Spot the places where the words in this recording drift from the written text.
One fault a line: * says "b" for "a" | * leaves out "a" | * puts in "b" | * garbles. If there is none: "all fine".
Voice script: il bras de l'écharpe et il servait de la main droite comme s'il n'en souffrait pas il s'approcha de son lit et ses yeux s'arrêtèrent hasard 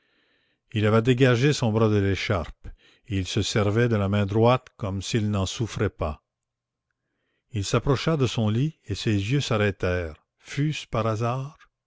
* puts in "avait dégagé son"
* puts in "se"
* puts in "fut ce par"